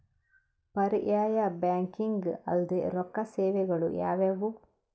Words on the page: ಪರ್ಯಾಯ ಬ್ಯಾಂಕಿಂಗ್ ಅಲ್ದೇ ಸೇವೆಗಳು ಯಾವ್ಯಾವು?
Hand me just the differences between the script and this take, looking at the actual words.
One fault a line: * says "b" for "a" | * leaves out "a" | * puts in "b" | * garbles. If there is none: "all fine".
* puts in "ರೊಕ್ಕ"